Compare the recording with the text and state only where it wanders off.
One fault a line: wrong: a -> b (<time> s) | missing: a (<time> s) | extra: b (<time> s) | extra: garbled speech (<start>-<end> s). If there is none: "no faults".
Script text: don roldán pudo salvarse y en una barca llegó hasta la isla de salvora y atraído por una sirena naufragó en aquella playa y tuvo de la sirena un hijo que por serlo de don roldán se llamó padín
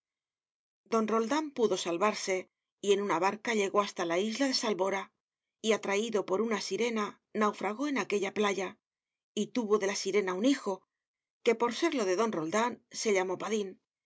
no faults